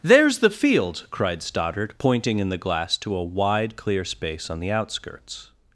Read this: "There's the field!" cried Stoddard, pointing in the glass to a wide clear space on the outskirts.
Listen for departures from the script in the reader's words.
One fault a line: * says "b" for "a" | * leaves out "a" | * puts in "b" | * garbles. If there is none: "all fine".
all fine